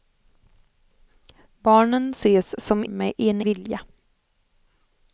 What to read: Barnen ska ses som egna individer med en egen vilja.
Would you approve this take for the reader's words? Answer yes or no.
no